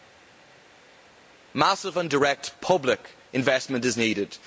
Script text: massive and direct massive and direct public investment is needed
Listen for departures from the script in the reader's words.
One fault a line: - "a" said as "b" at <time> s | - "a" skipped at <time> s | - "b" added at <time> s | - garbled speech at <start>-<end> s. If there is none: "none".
- "massive and direct" skipped at 2.6 s